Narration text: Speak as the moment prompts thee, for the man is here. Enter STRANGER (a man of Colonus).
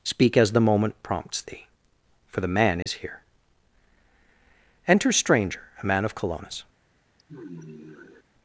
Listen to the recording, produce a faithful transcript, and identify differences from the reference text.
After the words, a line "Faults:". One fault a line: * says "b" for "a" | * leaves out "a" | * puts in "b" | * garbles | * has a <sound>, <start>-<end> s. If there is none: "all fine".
Speak as the moment prompts thee, for the man is here. Enter STRANGER (a man of Colonus).
Faults:
* has a dropout, 2.8-2.9 s
* has a sigh, 7.2-8.2 s